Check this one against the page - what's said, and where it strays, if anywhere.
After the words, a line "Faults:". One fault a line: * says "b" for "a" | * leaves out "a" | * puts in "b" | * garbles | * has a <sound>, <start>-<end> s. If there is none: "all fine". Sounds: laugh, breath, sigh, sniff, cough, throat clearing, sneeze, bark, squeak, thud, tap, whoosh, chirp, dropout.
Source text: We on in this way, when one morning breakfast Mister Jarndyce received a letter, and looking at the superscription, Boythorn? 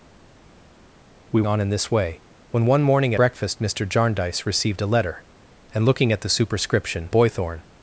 We on in this way, when one morning breakfast Mister Jarndyce received a letter, and looking at the superscription, Boythorn?
Faults:
all fine